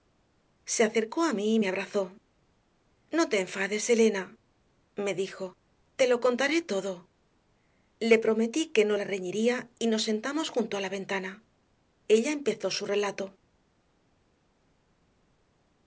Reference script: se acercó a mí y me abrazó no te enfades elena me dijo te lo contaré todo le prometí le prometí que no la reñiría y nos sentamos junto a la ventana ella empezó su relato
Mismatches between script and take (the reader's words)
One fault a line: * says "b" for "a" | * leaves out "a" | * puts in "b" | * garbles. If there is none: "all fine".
* leaves out "le prometí"